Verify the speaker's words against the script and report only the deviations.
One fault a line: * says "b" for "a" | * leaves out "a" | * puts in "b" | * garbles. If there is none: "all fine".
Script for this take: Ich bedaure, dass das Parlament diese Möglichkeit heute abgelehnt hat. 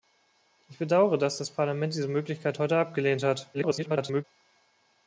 * garbles